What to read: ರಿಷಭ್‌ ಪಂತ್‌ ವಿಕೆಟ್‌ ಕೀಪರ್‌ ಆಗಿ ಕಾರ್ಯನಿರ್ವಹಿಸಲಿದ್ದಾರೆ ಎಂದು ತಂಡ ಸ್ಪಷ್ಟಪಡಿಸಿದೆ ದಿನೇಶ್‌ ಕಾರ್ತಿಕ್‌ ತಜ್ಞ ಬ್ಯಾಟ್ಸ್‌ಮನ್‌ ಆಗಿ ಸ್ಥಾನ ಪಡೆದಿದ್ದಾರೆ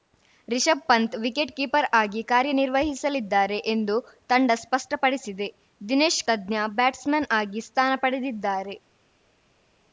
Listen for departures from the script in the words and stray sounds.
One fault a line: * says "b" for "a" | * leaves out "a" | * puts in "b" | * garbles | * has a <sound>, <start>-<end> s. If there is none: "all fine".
* leaves out "ಕಾರ್ತಿಕ್"